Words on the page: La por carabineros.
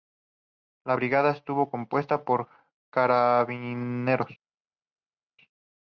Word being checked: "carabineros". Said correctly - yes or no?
yes